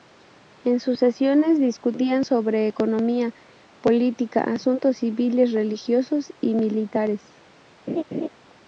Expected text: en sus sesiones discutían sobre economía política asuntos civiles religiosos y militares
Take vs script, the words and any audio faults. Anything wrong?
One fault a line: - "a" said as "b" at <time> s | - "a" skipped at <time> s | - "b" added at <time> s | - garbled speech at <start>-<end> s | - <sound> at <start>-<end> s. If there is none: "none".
- laugh at 7.9-8.3 s